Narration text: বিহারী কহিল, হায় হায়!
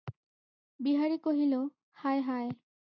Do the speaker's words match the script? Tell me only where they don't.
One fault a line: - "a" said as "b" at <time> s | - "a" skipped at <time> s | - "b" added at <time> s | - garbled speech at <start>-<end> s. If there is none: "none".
none